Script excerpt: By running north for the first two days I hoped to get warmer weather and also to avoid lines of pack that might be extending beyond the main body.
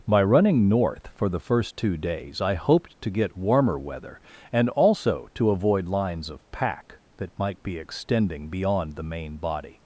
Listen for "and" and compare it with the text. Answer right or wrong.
right